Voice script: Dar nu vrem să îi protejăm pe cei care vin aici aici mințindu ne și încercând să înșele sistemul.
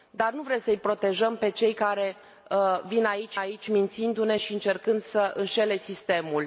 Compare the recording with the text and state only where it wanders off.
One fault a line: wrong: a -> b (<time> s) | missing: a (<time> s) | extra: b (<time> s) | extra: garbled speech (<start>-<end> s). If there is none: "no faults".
no faults